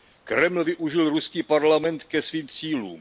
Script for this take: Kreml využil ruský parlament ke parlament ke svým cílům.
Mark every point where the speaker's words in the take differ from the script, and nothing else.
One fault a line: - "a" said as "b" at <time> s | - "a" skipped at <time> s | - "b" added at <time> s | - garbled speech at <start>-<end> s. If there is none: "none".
- "parlament ke" skipped at 2.2 s